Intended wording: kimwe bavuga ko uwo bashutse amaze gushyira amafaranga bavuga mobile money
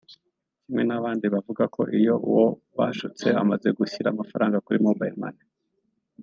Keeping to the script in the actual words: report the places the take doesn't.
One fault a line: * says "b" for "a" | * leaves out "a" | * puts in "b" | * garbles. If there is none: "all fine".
* puts in "n'abandi"
* puts in "iyo"
* says "kuri" for "bavuga"